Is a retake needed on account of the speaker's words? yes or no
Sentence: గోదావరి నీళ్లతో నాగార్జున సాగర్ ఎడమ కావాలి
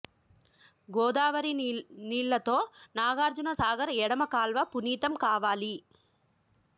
yes